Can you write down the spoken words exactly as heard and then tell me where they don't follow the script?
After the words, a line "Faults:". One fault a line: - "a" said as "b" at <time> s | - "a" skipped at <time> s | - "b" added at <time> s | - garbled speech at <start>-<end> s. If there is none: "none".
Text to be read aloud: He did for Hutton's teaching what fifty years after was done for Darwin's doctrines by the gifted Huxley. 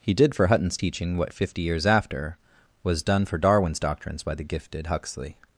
He did for Hutton's teaching what fifty years after was done for Darwin's doctrines by the gifted Huxley.
Faults:
none